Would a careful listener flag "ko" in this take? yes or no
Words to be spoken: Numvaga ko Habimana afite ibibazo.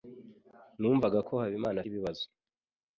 no